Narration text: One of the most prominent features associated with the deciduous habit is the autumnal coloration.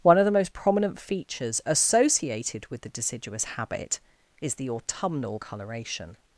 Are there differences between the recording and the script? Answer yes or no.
no